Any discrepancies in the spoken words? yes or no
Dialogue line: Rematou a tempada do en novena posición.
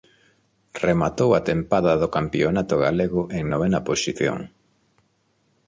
yes